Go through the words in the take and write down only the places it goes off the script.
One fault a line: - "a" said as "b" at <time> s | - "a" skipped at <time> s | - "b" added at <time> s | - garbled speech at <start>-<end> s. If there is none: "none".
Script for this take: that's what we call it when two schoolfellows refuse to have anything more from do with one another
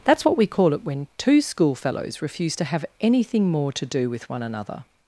- "from" said as "to" at 3.7 s